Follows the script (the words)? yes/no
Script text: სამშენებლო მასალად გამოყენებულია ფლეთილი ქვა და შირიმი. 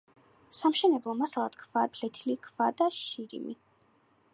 no